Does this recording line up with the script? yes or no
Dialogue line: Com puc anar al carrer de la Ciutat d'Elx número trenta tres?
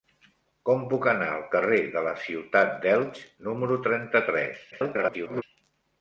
no